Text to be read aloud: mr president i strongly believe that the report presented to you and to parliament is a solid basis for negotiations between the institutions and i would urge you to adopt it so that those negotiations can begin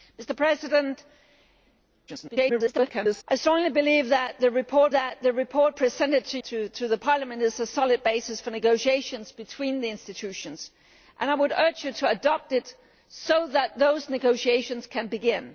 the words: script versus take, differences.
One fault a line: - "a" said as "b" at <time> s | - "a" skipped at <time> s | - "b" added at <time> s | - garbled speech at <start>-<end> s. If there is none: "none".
- garbled speech at 2.1-3.2 s
- "that the report" added at 4.9 s
- "you and" skipped at 6.4 s